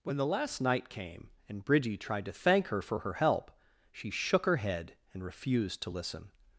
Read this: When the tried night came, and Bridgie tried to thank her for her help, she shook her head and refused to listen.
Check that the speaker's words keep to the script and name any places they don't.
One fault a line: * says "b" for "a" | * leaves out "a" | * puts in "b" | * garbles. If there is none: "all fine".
* says "last" for "tried"